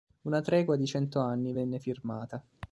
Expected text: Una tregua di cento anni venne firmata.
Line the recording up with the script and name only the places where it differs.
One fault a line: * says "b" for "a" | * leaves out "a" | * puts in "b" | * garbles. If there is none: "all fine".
all fine